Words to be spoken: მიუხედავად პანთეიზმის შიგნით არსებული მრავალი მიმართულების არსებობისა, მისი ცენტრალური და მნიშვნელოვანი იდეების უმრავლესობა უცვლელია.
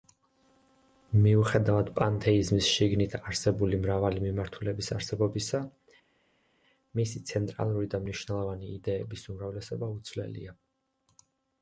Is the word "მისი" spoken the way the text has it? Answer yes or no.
yes